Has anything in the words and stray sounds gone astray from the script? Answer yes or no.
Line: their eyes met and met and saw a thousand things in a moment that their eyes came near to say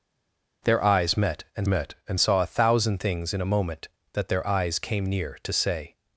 no